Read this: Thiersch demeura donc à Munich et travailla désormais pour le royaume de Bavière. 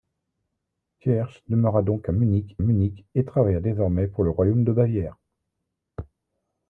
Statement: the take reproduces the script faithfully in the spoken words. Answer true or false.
false